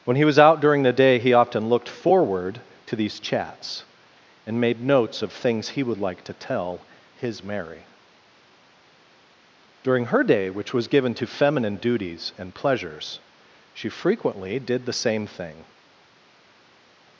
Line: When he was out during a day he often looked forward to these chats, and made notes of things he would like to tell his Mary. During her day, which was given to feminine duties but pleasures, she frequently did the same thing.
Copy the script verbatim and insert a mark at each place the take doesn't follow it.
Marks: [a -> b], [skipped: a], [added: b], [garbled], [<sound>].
When he was out during [a -> the] day he often looked forward to these chats, and made notes of things he would like to tell his Mary. During her day, which was given to feminine duties [but -> and] pleasures, she frequently did the same thing.